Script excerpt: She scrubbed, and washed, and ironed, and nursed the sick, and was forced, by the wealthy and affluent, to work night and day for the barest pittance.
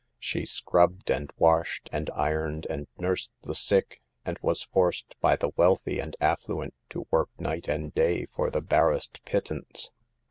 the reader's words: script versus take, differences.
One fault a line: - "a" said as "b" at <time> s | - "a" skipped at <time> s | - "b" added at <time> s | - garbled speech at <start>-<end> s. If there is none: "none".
none